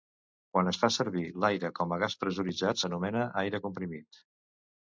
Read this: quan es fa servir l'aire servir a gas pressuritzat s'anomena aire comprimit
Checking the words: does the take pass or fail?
fail